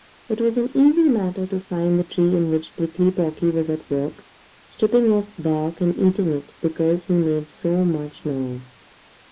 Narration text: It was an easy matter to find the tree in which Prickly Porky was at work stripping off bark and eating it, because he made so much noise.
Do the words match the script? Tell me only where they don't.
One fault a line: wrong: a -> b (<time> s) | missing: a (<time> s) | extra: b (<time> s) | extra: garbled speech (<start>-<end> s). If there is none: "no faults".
no faults